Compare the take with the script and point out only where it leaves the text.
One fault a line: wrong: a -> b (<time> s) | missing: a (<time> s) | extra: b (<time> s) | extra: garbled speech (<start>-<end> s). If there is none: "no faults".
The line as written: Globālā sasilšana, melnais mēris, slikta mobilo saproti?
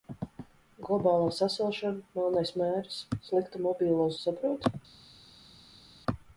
no faults